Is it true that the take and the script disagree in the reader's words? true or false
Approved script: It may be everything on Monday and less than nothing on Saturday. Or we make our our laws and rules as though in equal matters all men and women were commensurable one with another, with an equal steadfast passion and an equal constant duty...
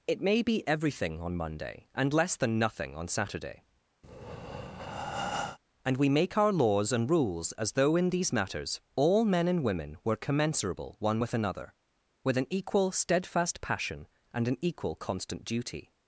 true